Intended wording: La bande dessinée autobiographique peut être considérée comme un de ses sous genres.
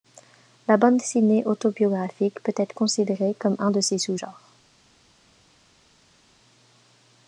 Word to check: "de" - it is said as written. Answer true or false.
true